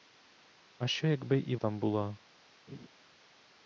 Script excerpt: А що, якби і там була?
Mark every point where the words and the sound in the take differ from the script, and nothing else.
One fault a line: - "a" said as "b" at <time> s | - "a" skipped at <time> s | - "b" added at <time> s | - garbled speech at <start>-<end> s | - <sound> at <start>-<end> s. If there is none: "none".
- laugh at 2.7-2.9 s